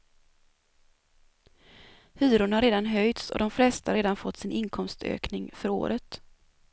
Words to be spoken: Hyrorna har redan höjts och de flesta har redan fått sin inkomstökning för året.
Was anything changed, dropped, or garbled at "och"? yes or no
no